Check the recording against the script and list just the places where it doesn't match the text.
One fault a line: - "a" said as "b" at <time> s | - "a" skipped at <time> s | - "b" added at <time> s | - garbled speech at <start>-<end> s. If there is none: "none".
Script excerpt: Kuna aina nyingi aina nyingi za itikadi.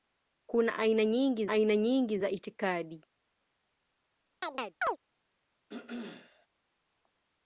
none